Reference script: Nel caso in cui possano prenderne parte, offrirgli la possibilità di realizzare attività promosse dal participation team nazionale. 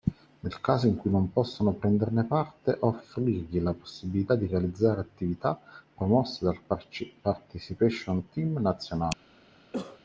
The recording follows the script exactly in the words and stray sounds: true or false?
false